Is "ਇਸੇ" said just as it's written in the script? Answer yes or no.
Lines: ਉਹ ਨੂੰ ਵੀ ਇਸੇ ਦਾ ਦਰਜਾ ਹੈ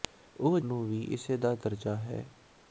yes